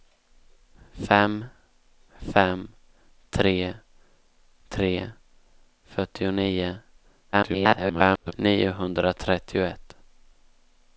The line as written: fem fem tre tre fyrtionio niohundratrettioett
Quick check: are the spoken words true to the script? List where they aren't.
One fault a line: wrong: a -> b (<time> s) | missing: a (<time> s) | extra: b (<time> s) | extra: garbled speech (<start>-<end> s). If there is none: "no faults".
extra: garbled speech (7.3-8.3 s)